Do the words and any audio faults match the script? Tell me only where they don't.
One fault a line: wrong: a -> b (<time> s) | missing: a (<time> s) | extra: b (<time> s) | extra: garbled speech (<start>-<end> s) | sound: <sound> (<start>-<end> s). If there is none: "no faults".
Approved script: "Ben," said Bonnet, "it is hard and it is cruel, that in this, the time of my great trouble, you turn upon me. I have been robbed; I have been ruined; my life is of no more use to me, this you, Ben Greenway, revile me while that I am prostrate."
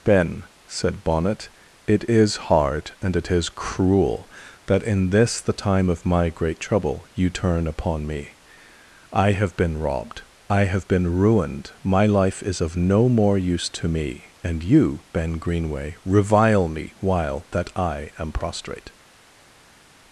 wrong: this -> and (14.4 s)